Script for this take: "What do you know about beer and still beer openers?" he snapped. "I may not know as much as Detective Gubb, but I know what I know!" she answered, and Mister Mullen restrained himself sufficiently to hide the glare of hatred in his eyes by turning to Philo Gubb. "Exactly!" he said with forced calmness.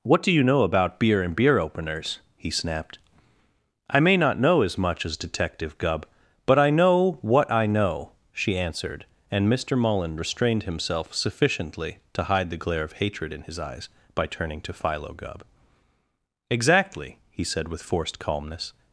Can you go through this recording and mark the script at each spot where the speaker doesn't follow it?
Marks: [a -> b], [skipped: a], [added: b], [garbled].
"What do you know about beer and [skipped: still] beer openers?" he snapped. "I may not know as much as Detective Gubb, but I know what I know!" she answered, and Mister Mullen restrained himself sufficiently to hide the glare of hatred in his eyes by turning to Philo Gubb. "Exactly!" he said with forced calmness.